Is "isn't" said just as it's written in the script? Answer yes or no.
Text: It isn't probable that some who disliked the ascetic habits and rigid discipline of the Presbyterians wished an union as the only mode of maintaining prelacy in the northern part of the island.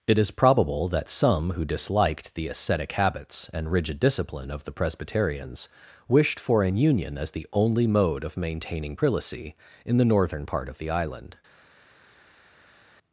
no